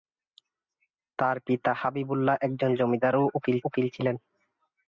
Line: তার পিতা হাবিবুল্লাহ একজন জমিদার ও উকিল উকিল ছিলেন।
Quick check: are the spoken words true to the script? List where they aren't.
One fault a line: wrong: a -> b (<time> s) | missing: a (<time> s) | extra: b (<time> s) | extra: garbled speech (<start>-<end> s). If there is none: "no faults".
no faults